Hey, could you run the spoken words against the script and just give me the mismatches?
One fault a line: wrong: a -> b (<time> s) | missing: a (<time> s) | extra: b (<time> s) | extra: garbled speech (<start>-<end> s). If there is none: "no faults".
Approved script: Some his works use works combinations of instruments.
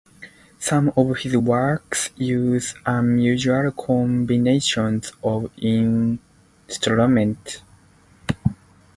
extra: of (1.0 s)
wrong: works -> unusual (2.8 s)